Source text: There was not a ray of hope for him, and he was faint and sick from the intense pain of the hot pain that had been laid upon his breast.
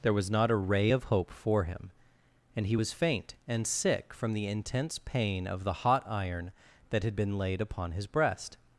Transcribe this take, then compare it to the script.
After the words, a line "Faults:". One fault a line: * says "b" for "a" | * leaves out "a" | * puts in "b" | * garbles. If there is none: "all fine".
There was not a ray of hope for him, and he was faint and sick from the intense pain of the hot iron that had been laid upon his breast.
Faults:
* says "iron" for "pain"